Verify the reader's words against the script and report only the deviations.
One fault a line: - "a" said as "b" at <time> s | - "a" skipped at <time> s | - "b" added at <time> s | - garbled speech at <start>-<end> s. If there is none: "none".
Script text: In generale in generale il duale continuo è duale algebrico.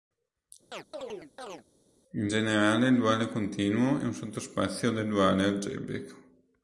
- "in generale" skipped at 2.9 s
- "un sottospazio del" added at 4.0 s